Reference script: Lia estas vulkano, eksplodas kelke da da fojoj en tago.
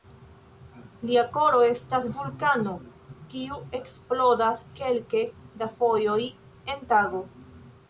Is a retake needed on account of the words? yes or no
yes